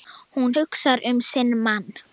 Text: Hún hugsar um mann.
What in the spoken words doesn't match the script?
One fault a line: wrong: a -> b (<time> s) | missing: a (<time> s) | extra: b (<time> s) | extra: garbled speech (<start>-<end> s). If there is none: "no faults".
extra: sinn (1.2 s)